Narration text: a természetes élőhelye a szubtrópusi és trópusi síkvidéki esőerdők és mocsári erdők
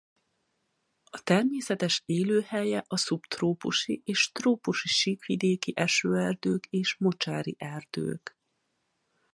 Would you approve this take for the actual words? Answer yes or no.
yes